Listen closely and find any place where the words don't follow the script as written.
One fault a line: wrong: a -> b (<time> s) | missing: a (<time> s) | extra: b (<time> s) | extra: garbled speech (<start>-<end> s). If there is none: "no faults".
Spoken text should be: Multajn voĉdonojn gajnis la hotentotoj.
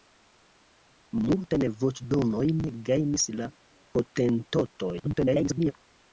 extra: garbled speech (5.0-5.7 s)